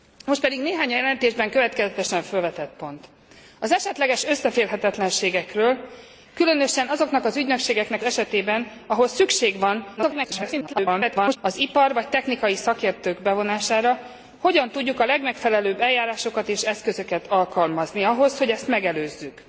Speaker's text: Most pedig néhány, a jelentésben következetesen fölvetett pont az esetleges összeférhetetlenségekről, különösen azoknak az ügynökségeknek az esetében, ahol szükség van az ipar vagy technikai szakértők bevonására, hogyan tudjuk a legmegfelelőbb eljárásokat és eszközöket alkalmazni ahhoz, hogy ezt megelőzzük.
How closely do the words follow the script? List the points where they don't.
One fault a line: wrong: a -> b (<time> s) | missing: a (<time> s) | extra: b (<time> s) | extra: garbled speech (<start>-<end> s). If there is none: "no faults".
missing: az (8.0 s)
extra: garbled speech (10.0-11.4 s)